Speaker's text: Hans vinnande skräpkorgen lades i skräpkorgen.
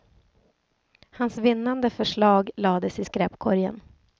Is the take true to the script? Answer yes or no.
no